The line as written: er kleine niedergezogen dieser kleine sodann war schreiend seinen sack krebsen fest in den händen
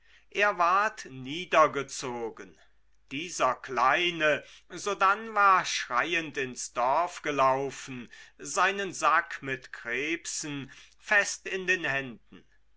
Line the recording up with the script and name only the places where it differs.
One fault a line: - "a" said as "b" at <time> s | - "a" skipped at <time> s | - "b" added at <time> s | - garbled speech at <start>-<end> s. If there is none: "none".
- "kleine" said as "ward" at 0.6 s
- "ins dorf gelaufen" added at 6.4 s
- "mit" added at 9.4 s